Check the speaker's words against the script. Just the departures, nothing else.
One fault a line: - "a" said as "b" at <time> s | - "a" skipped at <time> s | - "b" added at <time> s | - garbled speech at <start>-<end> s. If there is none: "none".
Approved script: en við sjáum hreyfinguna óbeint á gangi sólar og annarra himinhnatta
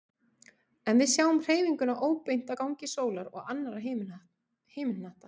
none